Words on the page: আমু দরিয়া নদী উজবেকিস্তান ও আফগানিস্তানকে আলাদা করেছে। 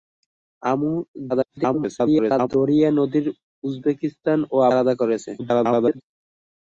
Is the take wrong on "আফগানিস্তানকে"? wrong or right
wrong